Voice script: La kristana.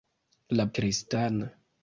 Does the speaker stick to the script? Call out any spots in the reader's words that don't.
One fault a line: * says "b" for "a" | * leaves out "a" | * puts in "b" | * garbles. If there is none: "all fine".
all fine